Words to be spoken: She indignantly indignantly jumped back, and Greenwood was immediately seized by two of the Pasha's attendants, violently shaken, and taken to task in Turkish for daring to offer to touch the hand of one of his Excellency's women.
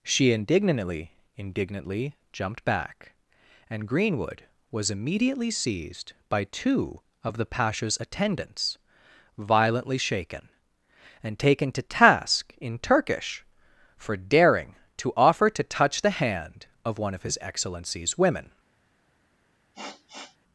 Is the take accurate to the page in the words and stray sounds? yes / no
no